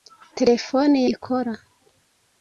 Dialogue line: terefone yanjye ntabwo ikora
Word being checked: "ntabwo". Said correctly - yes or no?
no